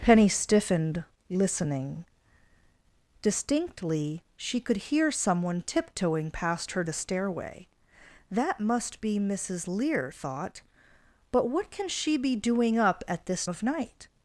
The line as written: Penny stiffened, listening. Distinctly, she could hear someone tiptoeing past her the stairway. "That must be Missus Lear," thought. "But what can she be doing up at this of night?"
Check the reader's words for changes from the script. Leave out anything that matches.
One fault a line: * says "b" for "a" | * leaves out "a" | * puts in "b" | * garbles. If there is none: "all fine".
all fine